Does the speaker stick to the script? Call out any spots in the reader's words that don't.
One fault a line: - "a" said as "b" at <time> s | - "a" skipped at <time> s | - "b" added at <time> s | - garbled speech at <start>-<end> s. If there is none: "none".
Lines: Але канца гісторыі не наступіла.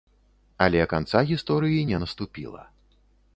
none